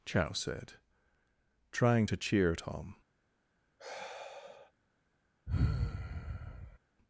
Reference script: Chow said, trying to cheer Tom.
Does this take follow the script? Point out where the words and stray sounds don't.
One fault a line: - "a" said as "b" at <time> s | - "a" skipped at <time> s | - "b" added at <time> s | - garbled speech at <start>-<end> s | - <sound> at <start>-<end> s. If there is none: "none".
- sigh at 3.8-4.7 s
- sigh at 5.5-6.8 s